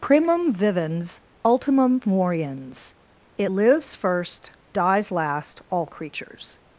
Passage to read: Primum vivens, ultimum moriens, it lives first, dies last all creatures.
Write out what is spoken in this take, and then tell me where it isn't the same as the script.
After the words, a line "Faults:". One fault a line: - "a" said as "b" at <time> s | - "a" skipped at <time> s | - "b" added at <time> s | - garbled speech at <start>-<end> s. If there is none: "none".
Primum vivens, ultimum moriens, it lives first, dies last all creatures.
Faults:
none